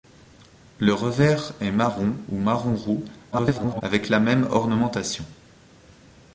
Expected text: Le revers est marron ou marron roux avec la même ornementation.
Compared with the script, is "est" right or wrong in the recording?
right